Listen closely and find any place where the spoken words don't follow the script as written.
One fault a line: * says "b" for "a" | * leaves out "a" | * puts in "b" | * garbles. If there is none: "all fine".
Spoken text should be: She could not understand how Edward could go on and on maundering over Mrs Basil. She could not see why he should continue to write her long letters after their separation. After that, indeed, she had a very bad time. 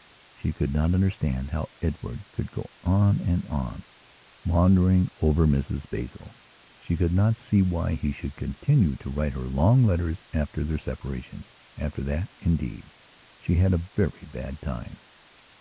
all fine